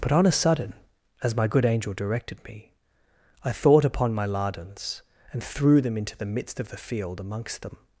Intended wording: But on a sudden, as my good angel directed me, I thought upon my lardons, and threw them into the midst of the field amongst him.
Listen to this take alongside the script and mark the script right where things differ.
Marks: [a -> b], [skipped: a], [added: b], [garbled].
But on a sudden, as my good angel directed me, I thought upon my lardons, and threw them into the midst of the field amongst [him. -> them]